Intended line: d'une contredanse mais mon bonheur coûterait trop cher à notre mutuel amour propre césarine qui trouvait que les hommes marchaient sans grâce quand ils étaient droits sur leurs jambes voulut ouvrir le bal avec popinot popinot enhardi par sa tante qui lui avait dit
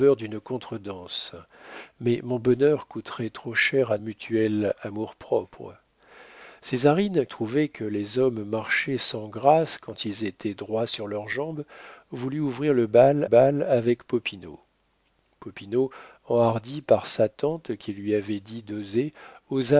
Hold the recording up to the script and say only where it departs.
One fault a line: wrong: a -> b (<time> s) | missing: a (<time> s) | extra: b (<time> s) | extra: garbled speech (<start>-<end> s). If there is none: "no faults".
missing: notre (4.0 s)
missing: qui (7.3 s)
extra: bal (13.2 s)